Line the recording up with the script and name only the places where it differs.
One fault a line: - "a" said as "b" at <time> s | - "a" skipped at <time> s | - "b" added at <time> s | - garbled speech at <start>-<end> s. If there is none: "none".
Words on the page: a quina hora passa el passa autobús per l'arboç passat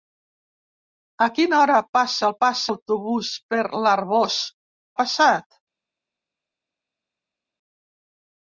none